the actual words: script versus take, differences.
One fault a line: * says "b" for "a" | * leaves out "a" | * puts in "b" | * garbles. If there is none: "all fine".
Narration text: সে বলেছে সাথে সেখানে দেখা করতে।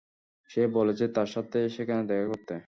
* puts in "তার"